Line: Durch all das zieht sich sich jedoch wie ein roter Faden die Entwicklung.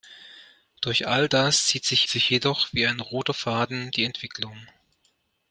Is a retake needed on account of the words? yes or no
no